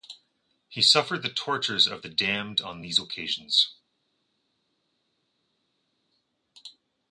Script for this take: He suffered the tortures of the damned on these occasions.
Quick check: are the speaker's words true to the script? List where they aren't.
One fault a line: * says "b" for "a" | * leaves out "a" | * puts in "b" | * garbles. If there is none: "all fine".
all fine